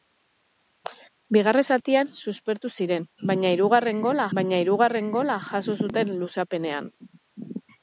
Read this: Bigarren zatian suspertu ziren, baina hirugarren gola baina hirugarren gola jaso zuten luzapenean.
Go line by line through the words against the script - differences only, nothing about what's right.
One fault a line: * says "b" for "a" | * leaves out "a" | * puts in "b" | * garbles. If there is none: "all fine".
all fine